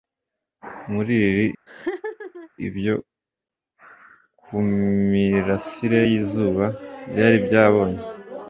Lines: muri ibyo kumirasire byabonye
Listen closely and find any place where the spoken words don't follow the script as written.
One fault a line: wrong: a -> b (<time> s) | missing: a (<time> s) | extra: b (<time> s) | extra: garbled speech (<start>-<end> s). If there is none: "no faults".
extra: lili (1.2 s)
extra: yizuba byari (6.1 s)